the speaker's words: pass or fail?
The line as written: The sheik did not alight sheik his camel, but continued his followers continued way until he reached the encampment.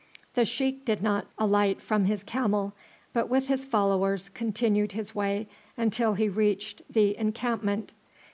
fail